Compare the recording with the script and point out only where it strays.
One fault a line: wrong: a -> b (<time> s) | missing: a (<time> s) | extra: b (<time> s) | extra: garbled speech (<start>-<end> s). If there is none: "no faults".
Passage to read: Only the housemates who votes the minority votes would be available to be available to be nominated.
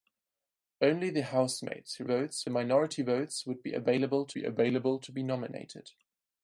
no faults